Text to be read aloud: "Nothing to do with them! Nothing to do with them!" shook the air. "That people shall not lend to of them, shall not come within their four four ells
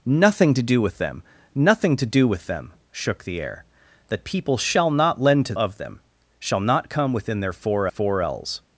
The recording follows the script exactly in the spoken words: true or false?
true